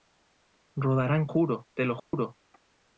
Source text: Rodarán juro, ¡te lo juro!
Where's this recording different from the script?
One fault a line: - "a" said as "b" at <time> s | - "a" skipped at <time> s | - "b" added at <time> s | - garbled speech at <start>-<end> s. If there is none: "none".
none